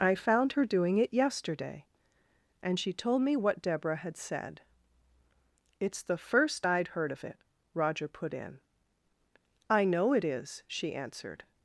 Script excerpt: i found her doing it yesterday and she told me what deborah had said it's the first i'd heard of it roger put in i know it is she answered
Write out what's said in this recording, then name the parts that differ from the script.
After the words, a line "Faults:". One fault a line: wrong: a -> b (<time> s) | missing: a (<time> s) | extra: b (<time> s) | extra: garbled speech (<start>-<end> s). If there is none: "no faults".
i found her doing it yesterday and she told me what deborah had said it's the first i'd heard of it roger put in i know it is she answered
Faults:
no faults